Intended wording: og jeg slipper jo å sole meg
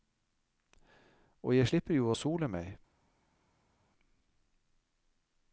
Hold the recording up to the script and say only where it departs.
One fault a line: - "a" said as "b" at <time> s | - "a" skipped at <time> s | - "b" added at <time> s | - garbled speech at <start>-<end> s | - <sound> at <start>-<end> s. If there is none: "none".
none